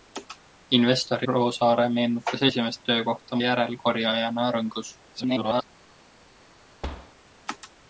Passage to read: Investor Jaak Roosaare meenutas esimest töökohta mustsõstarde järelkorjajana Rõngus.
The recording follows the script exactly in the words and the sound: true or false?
false